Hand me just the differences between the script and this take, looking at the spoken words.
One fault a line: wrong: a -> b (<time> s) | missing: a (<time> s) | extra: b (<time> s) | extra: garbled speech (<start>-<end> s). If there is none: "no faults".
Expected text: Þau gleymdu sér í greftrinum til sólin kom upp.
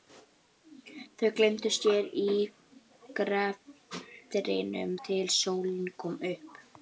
no faults